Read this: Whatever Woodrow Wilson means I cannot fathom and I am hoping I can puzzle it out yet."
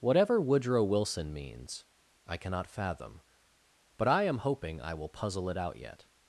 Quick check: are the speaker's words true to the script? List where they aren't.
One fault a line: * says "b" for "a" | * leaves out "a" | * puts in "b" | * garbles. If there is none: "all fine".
* says "but" for "and"
* says "will" for "can"